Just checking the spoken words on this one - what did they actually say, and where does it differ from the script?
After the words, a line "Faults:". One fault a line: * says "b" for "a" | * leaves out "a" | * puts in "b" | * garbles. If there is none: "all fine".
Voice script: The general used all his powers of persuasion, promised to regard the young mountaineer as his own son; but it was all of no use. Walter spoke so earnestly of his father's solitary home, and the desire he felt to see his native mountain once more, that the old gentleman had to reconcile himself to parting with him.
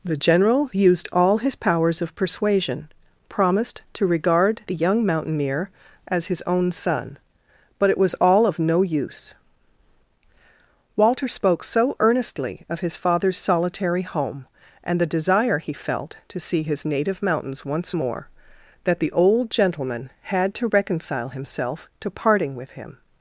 The general used all his powers of persuasion, promised to regard the young mountaineer as his own son; but it was all of no use. Walter spoke so earnestly of his father's solitary home, and the desire he felt to see his native mountains once more, that the old gentleman had to reconcile himself to parting with him.
Faults:
* says "mountains" for "mountain"